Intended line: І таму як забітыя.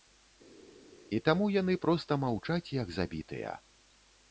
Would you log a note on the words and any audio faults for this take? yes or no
yes